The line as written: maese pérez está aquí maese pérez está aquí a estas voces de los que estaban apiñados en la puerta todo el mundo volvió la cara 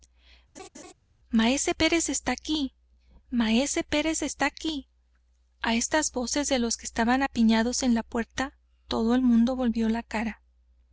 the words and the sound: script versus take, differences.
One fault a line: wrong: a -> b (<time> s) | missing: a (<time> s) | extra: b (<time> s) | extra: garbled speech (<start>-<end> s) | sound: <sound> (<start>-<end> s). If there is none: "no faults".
sound: laugh (0.5-0.9 s)